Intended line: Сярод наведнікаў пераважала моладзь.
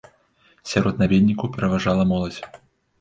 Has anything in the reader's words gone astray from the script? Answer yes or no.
no